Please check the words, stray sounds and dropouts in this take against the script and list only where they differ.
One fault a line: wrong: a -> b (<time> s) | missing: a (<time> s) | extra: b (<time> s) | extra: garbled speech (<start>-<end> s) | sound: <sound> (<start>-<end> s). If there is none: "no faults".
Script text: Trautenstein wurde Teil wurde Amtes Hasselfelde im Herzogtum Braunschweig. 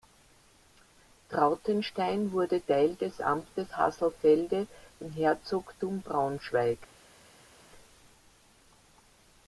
wrong: wurde -> des (3.0 s)